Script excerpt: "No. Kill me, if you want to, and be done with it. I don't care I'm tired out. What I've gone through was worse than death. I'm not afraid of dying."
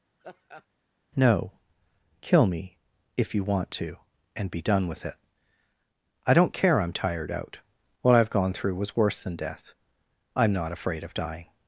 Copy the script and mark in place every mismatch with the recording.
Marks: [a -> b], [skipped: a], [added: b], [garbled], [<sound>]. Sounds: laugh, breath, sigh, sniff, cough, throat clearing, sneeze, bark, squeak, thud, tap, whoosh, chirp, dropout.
[laugh] "No. Kill me, if you want to, and be done with it. I don't care I'm tired out. What I've gone through was worse than death. I'm not afraid of dying."